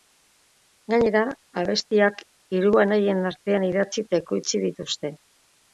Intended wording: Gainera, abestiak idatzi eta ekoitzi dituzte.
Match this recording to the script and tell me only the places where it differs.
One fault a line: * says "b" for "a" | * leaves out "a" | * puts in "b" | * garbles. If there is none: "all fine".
* puts in "hiru anaien artean"